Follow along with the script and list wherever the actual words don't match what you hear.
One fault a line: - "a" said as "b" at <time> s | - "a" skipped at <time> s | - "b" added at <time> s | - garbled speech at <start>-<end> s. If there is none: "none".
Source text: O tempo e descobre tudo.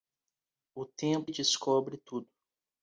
none